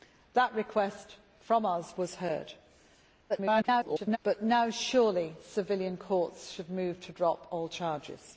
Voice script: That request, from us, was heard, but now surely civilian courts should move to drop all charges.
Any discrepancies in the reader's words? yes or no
yes